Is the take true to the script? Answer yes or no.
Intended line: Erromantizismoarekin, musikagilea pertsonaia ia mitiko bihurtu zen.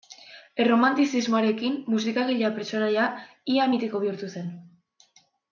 yes